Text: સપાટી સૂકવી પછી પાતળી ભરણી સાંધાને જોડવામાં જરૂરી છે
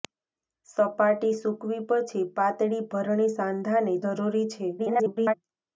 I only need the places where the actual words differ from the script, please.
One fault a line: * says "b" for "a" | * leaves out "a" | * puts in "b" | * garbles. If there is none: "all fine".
* leaves out "જોડવામાં"
* garbles